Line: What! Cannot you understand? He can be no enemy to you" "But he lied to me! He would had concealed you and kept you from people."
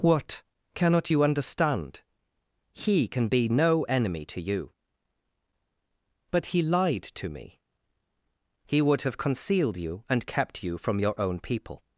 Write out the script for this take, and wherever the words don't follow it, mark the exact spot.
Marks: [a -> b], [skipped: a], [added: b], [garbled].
What! Cannot you understand? He can be no enemy to you" "But he lied to me! He would [had -> have] concealed you and kept you from [added: your own] people."